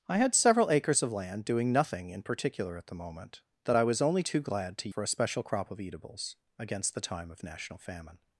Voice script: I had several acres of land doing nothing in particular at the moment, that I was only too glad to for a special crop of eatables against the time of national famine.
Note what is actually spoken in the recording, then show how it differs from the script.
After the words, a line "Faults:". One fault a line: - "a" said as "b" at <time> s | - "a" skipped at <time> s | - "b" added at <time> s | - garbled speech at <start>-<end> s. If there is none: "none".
I had several acres of land doing nothing in particular at the moment, that I was only too glad to for a special crop of eatables against the time of national famine.
Faults:
none